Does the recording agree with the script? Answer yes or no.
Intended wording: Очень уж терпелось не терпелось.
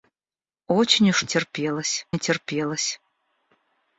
yes